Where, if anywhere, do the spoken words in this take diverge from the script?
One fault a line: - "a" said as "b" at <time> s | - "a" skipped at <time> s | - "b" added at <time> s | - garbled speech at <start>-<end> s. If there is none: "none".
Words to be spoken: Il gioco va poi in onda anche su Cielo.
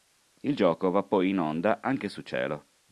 none